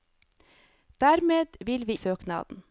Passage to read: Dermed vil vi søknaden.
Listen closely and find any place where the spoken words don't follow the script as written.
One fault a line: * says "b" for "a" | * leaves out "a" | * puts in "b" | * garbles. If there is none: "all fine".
all fine